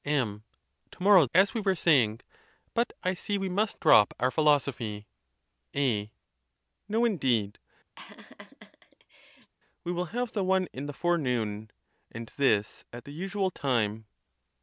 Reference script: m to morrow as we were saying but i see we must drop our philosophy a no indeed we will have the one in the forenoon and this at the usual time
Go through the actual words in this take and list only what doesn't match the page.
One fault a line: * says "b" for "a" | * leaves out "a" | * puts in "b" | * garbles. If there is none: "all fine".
all fine